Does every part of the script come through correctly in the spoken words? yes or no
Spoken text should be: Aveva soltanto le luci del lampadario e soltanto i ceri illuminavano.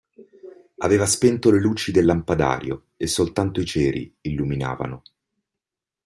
no